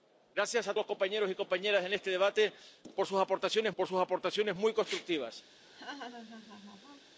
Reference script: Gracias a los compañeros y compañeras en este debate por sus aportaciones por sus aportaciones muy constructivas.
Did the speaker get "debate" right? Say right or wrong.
right